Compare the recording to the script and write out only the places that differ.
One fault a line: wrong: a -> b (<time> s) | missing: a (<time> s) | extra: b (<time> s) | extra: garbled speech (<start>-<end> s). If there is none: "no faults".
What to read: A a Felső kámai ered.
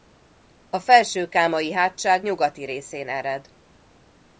missing: a (0.8 s)
extra: hátság nyugati részén (1.7 s)